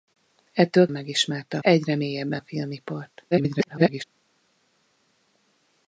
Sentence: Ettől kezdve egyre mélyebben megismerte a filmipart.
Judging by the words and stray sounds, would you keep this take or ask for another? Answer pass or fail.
fail